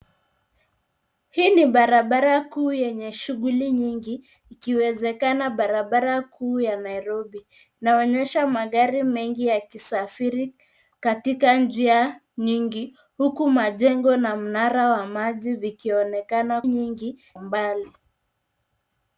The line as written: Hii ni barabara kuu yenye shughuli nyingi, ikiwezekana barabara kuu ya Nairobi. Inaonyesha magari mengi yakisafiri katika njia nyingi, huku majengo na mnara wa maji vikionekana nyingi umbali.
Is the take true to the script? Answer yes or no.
yes